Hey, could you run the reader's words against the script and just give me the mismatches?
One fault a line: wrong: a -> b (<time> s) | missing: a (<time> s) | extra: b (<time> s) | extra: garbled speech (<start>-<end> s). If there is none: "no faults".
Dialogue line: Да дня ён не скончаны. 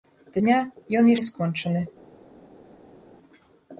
no faults